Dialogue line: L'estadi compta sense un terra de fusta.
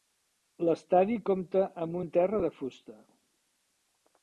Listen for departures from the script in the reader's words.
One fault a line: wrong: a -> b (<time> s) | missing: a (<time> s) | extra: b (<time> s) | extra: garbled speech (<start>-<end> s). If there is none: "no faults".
wrong: sense -> amb (1.9 s)